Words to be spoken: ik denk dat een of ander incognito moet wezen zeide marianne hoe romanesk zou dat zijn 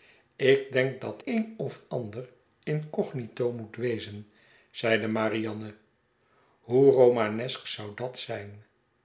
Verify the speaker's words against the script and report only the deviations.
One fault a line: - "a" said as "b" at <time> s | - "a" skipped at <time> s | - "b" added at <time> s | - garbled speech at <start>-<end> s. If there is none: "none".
none